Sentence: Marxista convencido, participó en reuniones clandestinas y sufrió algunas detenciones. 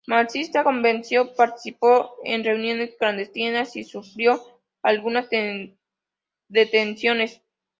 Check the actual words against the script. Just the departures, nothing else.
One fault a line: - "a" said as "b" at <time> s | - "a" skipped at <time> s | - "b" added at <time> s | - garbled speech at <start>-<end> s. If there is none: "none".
none